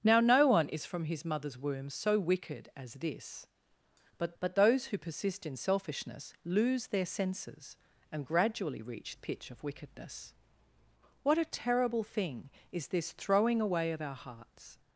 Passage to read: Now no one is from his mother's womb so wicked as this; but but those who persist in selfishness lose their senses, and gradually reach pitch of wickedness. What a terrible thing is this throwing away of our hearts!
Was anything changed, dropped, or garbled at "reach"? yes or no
no